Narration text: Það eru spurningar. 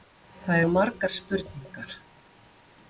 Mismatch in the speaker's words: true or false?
true